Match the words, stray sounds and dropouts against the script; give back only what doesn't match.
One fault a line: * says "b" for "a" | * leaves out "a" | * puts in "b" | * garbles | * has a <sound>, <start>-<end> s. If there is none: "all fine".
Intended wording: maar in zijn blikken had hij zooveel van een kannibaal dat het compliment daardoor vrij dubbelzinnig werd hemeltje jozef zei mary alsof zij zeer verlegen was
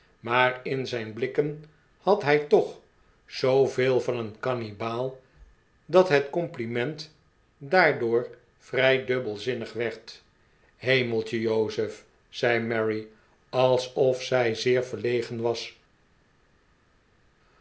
* puts in "toch"